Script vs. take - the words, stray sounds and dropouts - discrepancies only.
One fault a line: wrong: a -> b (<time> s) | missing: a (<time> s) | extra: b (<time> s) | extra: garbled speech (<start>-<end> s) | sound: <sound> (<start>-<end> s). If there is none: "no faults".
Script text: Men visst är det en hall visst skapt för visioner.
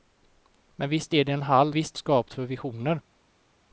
no faults